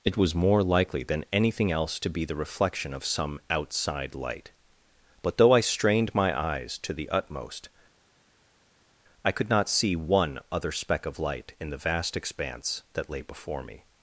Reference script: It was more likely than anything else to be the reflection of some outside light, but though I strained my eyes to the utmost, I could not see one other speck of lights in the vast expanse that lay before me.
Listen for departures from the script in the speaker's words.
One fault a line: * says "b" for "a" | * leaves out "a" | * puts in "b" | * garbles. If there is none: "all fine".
* says "light" for "lights"